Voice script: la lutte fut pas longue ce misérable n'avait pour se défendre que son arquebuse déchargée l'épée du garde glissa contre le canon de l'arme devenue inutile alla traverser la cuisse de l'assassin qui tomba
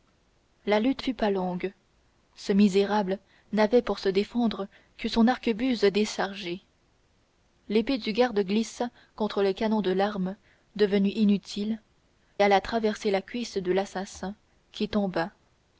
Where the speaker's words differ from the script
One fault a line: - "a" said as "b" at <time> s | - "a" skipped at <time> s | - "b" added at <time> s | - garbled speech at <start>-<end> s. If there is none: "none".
none